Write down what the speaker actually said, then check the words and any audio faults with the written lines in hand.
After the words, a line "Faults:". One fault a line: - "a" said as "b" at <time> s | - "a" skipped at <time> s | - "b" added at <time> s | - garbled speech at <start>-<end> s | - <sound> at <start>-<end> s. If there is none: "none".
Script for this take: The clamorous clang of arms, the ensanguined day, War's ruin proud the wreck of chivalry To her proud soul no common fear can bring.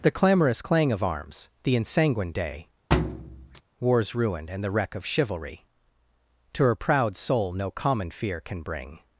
The clamorous clang of arms, the ensanguined day, War's ruin and the wreck of chivalry To her proud soul no common fear can bring.
Faults:
- thud at 2.9-3.6 s
- "proud" said as "and" at 4.5 s